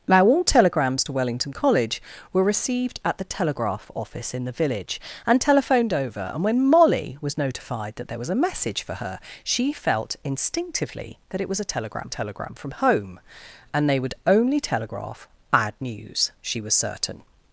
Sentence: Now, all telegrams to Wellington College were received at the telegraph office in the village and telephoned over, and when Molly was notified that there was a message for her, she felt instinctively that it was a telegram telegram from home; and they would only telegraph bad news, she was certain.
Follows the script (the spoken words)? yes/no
yes